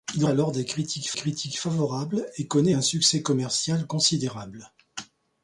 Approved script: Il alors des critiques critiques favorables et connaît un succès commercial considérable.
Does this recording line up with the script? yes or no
yes